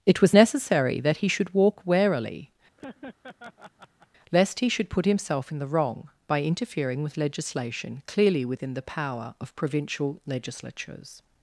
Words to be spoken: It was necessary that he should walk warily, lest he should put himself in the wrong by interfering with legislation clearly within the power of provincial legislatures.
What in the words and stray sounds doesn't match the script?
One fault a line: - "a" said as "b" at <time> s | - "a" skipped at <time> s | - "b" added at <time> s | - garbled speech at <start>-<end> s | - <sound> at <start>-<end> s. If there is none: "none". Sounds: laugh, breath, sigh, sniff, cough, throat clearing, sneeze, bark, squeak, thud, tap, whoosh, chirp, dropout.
- laugh at 2.8-4.1 s